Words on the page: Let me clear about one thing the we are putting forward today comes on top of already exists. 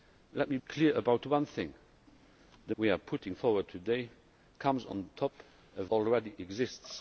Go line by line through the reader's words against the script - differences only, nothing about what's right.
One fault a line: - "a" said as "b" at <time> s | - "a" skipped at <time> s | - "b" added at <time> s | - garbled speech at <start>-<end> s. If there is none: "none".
none